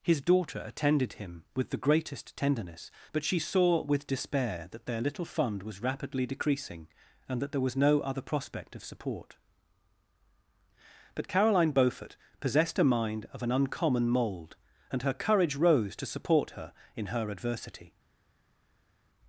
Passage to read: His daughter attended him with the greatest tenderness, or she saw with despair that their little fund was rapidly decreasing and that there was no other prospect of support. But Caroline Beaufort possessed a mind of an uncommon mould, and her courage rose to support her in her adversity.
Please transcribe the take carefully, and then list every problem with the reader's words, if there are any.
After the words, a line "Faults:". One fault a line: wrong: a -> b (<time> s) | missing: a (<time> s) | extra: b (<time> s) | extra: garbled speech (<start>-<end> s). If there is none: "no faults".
His daughter attended him with the greatest tenderness, but she saw with despair that their little fund was rapidly decreasing and that there was no other prospect of support. But Caroline Beaufort possessed a mind of an uncommon mould, and her courage rose to support her in her adversity.
Faults:
wrong: or -> but (3.1 s)